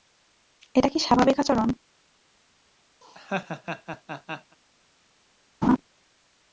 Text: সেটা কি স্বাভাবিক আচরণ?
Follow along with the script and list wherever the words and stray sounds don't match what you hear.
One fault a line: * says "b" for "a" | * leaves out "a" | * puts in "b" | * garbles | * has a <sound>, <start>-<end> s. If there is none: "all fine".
* says "এটা" for "সেটা"
* has a laugh, 3.0-4.6 s
* has a laugh, 5.6-5.8 s